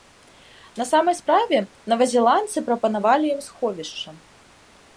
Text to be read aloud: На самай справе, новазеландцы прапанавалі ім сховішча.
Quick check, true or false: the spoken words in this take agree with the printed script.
true